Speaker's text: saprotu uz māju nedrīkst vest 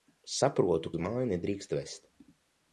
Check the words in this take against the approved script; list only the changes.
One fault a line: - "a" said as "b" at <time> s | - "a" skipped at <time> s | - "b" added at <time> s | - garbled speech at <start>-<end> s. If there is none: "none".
none